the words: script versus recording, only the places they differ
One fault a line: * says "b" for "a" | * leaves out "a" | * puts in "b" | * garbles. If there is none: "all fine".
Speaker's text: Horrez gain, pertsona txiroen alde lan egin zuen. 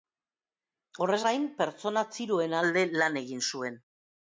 all fine